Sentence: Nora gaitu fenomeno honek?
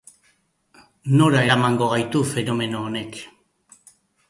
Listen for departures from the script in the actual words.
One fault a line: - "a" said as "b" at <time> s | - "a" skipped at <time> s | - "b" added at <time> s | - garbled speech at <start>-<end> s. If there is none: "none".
- "eramango" added at 1.5 s